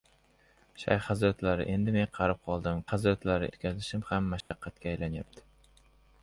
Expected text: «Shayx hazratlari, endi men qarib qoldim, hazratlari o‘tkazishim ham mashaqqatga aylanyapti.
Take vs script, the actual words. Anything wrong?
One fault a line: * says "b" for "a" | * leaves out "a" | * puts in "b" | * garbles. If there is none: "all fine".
all fine